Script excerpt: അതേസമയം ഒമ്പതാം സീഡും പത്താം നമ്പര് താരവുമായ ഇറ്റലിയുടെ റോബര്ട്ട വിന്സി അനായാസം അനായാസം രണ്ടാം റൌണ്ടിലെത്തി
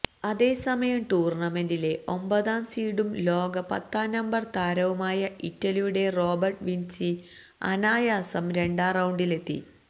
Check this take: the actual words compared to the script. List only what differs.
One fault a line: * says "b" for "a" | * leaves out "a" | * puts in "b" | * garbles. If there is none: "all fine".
* puts in "ടൂര്ണമെന്റിലെ"
* puts in "ലോക"
* leaves out "അനായാസം"